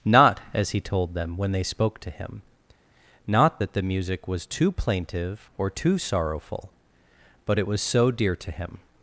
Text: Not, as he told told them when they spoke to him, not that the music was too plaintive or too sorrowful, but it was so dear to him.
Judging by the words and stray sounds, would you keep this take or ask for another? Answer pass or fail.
fail